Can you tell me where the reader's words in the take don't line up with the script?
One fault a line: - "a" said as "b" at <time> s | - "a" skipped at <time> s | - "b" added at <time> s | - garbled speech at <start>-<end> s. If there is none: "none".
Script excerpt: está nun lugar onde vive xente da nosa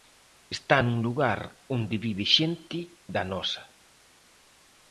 none